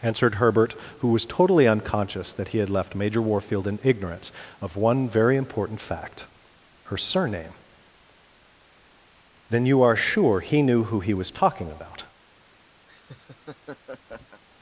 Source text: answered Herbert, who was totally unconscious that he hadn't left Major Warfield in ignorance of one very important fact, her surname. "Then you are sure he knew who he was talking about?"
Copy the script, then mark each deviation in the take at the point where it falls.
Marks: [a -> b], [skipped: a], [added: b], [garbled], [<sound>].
answered Herbert, who was totally unconscious that he [hadn't -> had] left Major Warfield in ignorance of one very important fact, her surname. "Then you are sure he knew who he was talking about?" [laugh]